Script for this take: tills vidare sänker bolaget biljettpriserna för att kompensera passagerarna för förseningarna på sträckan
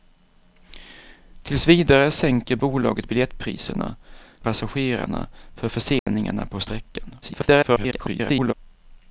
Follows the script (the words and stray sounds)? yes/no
no